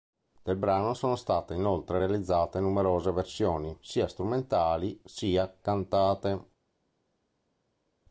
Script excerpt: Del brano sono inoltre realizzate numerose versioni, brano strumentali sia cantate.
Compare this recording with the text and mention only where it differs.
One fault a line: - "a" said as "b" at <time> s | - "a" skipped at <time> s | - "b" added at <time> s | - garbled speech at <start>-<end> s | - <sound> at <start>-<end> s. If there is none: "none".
- "state" added at 1.1 s
- "brano" said as "sia" at 3.8 s